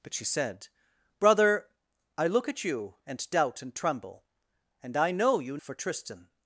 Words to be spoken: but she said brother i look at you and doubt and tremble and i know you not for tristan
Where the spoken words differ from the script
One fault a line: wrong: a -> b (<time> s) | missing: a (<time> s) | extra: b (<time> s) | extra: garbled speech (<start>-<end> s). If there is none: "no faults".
missing: not (5.6 s)